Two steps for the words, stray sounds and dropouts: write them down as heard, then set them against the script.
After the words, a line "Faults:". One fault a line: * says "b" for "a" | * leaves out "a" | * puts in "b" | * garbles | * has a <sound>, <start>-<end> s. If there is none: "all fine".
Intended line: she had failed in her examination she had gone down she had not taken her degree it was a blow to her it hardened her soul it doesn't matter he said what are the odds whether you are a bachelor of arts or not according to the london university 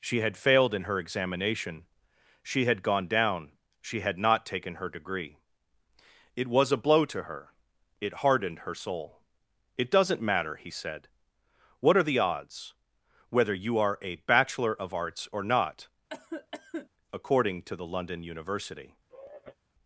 she had failed in her examination she had gone down she had not taken her degree it was a blow to her it hardened her soul it doesn't matter he said what are the odds whether you are a bachelor of arts or not according to the london university
Faults:
* has a cough, 16.1-16.9 s
* has a sigh, 19.1-19.6 s